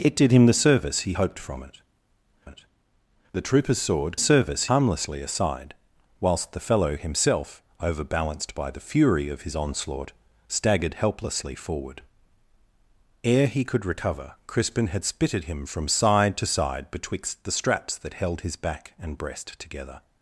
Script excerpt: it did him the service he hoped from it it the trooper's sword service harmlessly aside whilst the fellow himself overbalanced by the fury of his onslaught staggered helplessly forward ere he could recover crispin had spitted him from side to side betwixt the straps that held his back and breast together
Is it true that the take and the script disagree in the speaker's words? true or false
false